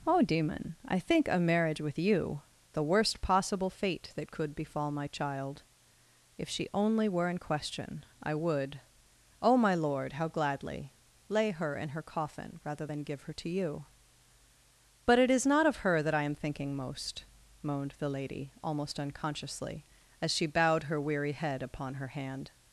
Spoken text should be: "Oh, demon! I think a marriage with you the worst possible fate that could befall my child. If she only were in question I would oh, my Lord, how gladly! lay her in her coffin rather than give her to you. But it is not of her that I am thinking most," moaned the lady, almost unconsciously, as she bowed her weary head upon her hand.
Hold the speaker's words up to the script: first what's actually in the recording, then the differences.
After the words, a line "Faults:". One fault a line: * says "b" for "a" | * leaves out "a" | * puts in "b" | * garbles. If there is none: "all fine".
"Oh, demon! I think a marriage with you the worst possible fate that could befall my child. If she only were in question I would oh, my Lord, how gladly! lay her in her coffin rather than give her to you. But it is not of her that I am thinking most," moaned the lady, almost unconsciously, as she bowed her weary head upon her hand.
Faults:
all fine